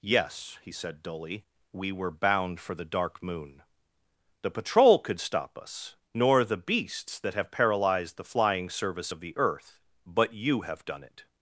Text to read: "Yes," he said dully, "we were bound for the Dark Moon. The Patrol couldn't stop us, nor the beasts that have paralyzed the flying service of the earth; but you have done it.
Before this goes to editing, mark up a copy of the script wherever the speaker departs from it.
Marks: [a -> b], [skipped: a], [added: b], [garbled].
"Yes," he said dully, "we were bound for the Dark Moon. The Patrol [couldn't -> could] stop us, nor the beasts that have paralyzed the flying service of the earth; but you have done it.